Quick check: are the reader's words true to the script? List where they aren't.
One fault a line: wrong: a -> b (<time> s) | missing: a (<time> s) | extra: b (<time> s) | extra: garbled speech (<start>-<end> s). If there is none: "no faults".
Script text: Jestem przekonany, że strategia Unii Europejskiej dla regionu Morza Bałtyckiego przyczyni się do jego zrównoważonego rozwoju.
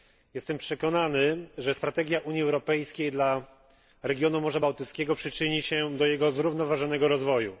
no faults